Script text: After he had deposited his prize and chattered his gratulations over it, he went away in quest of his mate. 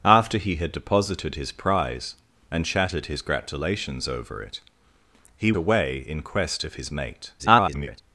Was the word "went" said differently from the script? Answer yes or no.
yes